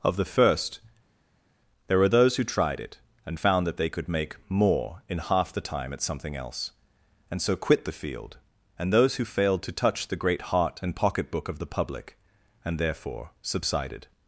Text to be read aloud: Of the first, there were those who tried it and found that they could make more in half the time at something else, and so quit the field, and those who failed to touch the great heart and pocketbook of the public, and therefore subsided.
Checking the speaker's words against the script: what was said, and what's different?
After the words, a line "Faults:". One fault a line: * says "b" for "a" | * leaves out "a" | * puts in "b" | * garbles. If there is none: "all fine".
Of the first, there were those who tried it and found that they could make more in half the time at something else, and so quit the field, and those who failed to touch the great heart and pocketbook of the public, and therefore subsided.
Faults:
all fine